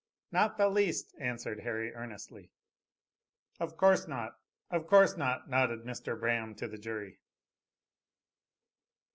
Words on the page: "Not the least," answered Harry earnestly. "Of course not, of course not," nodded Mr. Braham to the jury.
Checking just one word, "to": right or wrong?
right